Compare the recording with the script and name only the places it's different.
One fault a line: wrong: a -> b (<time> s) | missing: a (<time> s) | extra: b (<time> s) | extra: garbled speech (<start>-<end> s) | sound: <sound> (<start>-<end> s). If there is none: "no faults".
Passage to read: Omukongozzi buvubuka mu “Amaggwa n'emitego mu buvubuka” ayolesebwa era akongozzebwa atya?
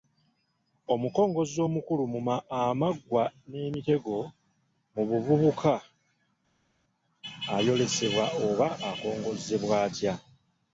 wrong: buvubuka -> omukulu (1.7 s)
wrong: era -> oba (8.5 s)